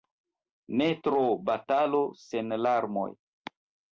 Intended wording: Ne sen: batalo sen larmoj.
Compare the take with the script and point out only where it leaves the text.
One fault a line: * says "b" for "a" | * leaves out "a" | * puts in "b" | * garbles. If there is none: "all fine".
* says "tro" for "sen"